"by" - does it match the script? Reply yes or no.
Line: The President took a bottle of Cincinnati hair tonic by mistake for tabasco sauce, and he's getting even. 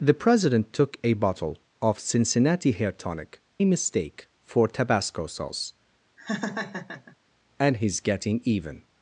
no